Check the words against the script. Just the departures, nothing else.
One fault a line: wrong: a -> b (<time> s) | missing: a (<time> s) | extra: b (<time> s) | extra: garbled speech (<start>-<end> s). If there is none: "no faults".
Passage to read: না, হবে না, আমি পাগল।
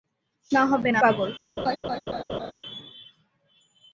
missing: আমি (1.0 s)